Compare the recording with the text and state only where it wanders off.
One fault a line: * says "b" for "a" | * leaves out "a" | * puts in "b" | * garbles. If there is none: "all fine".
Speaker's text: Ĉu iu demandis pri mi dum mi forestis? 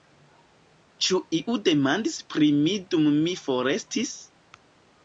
all fine